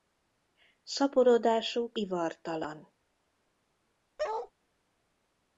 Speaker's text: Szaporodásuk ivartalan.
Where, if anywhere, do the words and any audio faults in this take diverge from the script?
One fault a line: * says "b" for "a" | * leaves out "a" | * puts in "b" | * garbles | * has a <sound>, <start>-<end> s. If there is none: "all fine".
* has a bark, 4.2-4.5 s